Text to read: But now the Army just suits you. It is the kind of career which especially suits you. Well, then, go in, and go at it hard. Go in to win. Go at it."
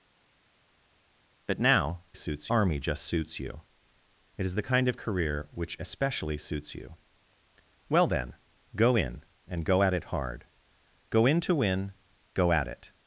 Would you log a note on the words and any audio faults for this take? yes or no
yes